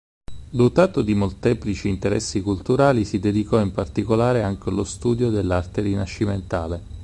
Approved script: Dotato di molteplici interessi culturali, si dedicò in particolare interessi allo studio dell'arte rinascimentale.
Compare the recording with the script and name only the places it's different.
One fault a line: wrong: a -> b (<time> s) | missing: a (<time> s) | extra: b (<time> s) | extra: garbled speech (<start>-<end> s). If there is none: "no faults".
wrong: interessi -> anche (4.4 s)